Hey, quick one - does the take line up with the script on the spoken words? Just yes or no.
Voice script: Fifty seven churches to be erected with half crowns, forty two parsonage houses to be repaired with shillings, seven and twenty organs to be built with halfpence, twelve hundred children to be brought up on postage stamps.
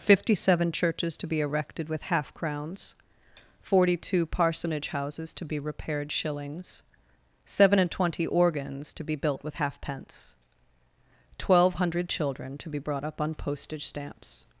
no